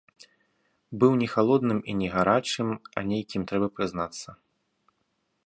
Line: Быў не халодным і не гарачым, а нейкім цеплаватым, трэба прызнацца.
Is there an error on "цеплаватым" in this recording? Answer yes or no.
yes